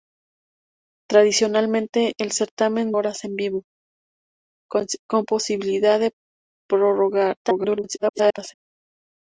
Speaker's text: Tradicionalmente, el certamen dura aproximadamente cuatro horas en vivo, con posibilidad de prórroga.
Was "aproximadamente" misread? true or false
true